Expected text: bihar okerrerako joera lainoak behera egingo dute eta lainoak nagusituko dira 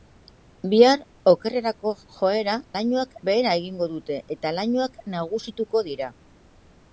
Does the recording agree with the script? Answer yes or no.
yes